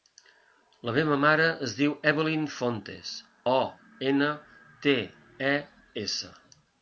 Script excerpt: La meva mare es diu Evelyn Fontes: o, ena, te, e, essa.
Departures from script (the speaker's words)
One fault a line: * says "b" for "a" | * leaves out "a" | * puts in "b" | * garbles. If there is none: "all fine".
all fine